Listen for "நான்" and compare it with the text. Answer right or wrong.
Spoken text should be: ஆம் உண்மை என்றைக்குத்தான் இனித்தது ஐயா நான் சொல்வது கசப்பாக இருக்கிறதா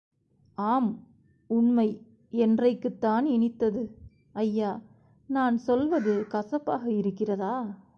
right